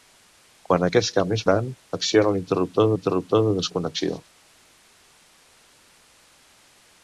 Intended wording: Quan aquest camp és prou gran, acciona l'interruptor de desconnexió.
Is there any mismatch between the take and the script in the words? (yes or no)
yes